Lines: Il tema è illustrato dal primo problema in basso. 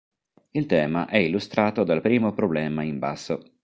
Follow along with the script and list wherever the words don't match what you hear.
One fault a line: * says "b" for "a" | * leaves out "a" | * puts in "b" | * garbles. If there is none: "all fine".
all fine